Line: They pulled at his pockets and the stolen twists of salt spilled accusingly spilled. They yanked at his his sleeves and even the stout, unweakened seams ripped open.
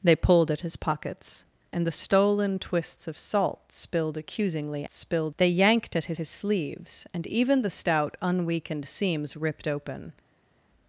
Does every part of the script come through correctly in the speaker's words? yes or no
yes